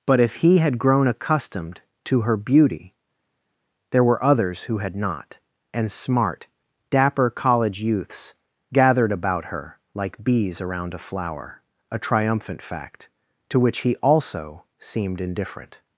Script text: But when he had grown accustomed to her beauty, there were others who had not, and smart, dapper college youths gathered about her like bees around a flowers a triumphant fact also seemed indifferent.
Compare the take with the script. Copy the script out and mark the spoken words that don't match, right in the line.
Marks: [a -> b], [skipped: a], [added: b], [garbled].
But [when -> if] he had grown accustomed to her beauty, there were others who had not, and smart, dapper college youths gathered about her like bees around a [flowers -> flower] a triumphant fact [added: to which he] also seemed indifferent.